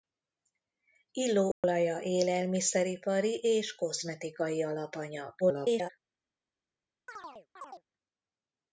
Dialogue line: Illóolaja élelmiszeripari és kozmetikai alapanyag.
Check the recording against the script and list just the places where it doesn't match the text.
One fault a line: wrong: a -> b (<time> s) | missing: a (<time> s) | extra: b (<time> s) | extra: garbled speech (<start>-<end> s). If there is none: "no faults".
extra: garbled speech (5.4-5.9 s)